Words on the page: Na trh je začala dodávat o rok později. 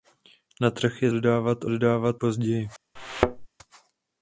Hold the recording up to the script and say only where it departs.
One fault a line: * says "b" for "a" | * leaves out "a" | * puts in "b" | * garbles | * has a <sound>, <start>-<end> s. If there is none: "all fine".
* leaves out "začala"
* says "dodávat" for "rok"
* has a thud, 3.0-3.5 s